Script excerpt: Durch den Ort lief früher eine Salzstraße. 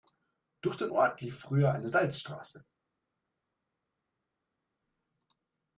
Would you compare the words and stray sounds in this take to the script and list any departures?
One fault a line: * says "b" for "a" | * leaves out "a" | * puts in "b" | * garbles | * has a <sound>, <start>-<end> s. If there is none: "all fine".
all fine